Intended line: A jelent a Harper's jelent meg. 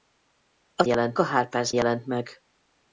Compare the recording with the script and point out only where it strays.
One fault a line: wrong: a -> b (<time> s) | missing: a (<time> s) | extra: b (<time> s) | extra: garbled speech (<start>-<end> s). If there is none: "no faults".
no faults